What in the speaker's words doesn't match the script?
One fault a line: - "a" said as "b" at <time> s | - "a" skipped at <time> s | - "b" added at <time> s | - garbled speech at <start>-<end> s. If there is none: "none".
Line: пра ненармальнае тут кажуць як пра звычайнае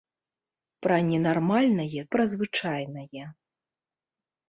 - "тут кажуць як" skipped at 2.0 s